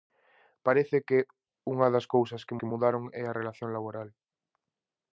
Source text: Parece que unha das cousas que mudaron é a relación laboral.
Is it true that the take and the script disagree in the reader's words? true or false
true